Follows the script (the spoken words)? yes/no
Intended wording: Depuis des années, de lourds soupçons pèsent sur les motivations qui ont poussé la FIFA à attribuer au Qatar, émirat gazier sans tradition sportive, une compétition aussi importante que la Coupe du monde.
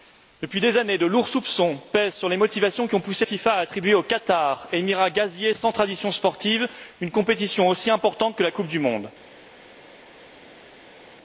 no